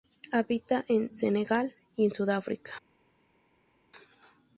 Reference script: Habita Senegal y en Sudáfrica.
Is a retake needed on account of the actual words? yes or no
yes